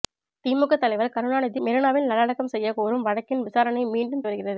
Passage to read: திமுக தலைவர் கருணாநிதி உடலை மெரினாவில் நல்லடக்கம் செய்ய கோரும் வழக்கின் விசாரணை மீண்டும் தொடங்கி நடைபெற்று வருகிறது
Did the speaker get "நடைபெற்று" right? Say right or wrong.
wrong